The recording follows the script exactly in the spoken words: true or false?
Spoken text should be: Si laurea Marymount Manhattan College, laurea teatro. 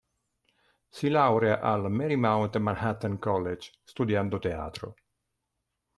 false